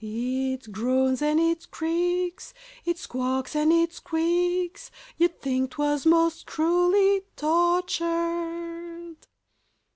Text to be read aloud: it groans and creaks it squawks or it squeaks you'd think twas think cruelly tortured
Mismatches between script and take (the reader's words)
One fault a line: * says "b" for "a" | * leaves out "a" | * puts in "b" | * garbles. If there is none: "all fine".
* puts in "it"
* says "and" for "or"
* says "most" for "think"